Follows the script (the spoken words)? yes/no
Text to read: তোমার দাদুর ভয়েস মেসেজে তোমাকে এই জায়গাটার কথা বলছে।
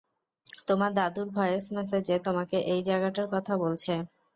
yes